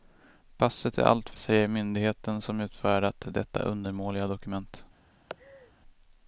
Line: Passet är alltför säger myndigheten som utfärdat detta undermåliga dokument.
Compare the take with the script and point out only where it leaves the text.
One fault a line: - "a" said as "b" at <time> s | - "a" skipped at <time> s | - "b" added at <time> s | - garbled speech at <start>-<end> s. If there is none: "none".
none